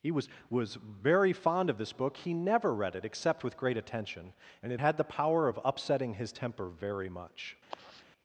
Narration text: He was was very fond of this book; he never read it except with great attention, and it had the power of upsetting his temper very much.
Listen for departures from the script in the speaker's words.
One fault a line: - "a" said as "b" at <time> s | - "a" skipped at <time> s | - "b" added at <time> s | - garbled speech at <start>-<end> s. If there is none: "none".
none